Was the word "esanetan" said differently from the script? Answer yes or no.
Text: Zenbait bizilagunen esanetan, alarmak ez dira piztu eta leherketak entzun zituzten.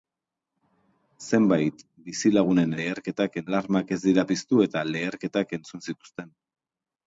yes